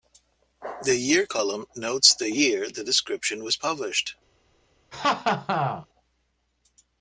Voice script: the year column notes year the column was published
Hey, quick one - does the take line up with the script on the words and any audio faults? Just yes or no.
no